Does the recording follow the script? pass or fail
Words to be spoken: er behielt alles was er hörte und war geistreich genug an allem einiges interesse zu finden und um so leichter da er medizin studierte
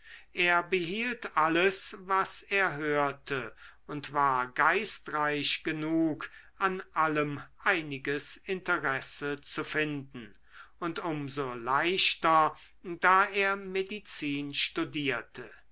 pass